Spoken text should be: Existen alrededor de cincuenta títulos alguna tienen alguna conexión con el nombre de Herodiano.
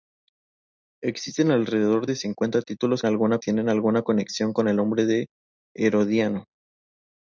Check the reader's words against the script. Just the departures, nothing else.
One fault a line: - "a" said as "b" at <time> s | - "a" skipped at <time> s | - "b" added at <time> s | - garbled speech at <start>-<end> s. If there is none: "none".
none